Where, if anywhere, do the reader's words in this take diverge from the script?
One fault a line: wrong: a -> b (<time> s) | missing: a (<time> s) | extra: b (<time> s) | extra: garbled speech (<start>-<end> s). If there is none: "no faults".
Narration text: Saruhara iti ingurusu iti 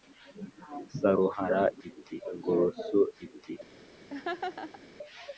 no faults